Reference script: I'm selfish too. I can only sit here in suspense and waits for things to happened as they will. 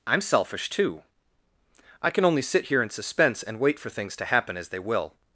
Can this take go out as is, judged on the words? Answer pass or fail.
fail